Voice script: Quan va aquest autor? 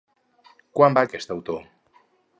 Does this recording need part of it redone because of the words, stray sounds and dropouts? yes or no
no